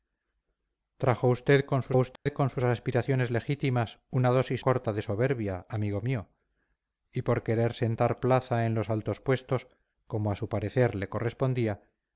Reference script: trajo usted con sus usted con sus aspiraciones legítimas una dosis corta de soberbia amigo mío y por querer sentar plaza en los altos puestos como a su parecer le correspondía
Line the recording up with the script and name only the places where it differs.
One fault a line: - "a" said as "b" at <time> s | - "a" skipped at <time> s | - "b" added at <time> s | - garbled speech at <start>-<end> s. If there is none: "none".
none